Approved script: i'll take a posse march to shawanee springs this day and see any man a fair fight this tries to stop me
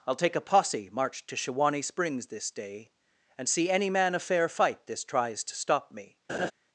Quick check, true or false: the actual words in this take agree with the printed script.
true